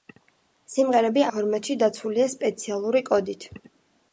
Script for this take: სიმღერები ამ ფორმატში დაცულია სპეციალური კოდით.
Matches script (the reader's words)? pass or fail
fail